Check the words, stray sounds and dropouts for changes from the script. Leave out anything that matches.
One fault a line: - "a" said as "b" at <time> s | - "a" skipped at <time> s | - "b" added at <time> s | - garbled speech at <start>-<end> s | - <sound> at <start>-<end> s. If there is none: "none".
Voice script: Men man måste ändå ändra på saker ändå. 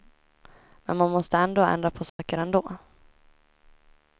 - dropout at 2.1-2.2 s